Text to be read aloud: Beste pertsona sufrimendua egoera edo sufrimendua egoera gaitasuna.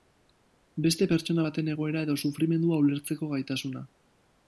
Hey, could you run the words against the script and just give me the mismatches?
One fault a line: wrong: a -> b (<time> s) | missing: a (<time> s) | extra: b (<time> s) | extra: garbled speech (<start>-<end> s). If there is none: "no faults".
wrong: sufrimendua -> baten (1.5 s)
wrong: egoera -> ulertzeko (2.8 s)